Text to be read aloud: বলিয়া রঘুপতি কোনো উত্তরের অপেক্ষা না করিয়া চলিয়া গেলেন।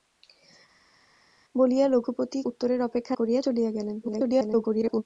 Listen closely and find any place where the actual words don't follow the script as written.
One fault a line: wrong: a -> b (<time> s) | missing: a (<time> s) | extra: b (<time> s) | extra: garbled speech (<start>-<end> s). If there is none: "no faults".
missing: কোনো (2.4 s)
missing: না (3.1 s)
extra: garbled speech (4.0-5.0 s)